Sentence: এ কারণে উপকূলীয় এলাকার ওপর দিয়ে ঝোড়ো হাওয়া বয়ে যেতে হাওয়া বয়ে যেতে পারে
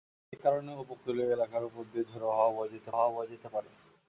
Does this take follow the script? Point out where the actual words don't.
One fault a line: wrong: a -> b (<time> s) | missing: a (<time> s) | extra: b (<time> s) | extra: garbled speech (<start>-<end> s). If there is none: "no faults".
no faults